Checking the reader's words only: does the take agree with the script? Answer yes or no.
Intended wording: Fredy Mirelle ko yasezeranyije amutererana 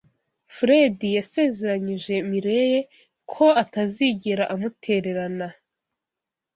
no